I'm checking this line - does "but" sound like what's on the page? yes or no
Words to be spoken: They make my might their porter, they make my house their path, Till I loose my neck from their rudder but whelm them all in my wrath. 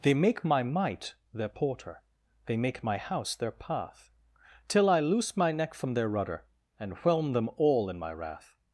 no